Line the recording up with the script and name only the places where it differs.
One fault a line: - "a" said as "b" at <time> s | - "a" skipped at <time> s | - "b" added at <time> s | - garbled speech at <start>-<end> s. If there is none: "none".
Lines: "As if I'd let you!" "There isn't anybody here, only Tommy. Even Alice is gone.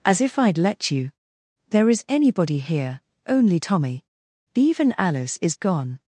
- "isn't" said as "is" at 1.9 s